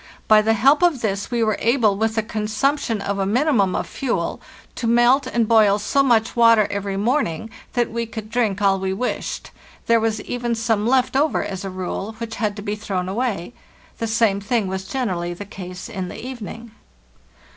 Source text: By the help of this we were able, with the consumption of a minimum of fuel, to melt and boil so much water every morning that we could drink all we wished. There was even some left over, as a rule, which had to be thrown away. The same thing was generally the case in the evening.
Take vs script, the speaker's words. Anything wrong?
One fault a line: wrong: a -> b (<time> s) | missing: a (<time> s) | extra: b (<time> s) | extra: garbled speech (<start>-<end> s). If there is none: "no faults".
no faults